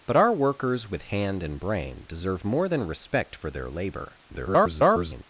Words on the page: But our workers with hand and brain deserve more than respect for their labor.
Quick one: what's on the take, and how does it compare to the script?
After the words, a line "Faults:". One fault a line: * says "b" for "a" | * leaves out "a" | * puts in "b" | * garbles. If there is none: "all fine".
But our workers with hand and brain deserve more than respect for their labor. [garbled]
Faults:
* garbles